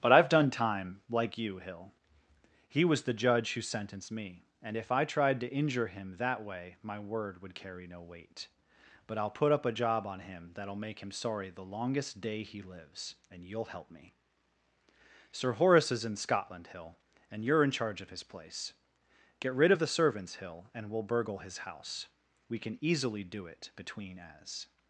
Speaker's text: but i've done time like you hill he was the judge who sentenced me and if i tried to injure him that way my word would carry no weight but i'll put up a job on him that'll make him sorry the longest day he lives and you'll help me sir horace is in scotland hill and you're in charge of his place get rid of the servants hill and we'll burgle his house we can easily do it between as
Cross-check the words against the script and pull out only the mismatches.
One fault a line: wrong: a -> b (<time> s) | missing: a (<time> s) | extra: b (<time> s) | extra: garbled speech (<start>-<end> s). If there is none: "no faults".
no faults